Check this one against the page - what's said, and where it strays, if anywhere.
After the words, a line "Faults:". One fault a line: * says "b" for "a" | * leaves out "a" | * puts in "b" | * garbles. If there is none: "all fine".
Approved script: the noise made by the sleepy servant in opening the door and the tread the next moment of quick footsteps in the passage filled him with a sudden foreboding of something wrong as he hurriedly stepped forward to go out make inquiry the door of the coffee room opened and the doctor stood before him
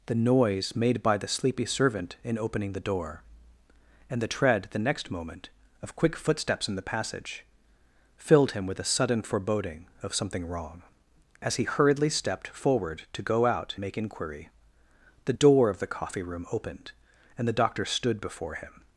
the noise made by the sleepy servant in opening the door and the tread the next moment of quick footsteps in the passage filled him with a sudden foreboding of something wrong as he hurriedly stepped forward to go out make inquiry the door of the coffee room opened and the doctor stood before him
Faults:
all fine